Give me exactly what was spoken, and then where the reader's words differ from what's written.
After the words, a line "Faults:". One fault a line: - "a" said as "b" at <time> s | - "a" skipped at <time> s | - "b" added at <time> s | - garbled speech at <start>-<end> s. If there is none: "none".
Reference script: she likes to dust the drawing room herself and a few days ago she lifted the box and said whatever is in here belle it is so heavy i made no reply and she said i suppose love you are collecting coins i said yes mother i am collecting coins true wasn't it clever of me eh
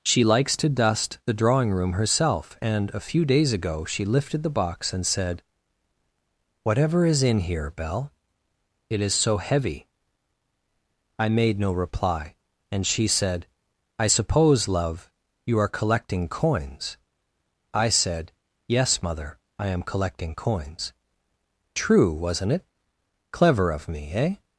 she likes to dust the drawing room herself and a few days ago she lifted the box and said whatever is in here belle it is so heavy i made no reply and she said i suppose love you are collecting coins i said yes mother i am collecting coins true wasn't it clever of me eh
Faults:
none